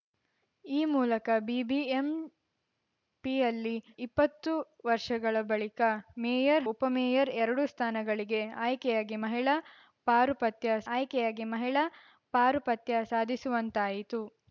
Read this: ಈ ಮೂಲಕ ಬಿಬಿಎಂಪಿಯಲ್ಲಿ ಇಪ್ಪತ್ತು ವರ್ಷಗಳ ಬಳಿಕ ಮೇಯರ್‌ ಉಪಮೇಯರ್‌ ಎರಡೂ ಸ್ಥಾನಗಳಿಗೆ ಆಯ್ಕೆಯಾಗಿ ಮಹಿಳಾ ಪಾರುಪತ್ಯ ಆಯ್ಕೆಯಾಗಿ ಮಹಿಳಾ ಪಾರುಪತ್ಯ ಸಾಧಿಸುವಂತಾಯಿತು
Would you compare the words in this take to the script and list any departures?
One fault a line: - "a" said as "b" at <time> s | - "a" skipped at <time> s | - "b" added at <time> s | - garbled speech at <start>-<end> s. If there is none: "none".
none